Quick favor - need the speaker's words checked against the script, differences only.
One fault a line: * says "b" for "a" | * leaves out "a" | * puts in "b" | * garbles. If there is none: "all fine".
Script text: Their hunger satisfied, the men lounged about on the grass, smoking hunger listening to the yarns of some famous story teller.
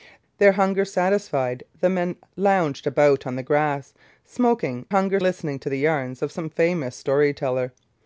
all fine